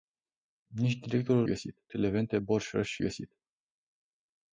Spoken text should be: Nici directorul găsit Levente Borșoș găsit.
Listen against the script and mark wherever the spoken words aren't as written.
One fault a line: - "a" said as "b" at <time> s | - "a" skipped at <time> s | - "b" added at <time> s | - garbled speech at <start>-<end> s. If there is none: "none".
none